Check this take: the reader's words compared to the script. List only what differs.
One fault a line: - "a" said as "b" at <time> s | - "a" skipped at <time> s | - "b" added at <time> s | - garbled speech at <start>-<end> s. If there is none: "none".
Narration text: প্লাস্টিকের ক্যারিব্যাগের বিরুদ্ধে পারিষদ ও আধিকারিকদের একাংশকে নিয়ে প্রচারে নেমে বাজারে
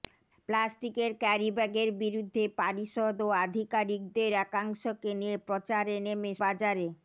none